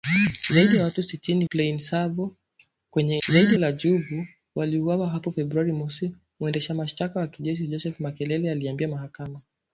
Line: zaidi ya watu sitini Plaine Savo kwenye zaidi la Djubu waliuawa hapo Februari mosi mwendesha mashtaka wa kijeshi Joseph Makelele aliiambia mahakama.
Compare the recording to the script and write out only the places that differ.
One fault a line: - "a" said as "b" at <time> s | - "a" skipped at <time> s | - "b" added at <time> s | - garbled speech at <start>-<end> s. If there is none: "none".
none